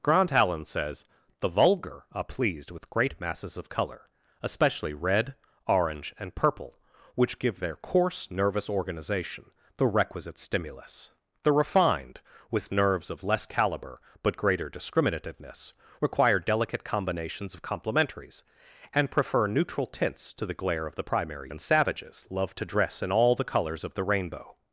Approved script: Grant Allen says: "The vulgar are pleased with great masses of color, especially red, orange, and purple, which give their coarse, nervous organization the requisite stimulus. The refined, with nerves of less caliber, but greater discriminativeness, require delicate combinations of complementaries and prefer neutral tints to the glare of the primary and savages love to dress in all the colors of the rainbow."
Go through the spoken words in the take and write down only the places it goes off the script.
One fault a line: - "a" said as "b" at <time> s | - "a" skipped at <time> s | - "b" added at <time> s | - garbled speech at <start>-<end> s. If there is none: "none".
none